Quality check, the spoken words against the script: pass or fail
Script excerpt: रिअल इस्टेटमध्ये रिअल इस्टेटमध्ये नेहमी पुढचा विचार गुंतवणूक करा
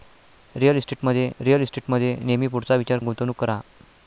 pass